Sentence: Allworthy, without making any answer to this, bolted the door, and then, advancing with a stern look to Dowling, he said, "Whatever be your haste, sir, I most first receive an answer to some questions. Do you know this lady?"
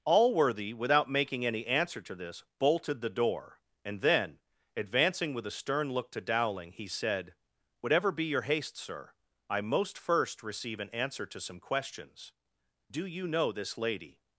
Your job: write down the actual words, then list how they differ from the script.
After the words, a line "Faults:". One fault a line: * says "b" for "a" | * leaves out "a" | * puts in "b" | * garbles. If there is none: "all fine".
Allworthy, without making any answer to this, bolted the door, and then, advancing with a stern look to Dowling, he said, "Whatever be your haste, sir, I most first receive an answer to some questions. Do you know this lady?"
Faults:
all fine